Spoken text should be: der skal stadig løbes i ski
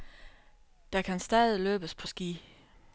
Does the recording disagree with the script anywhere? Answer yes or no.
yes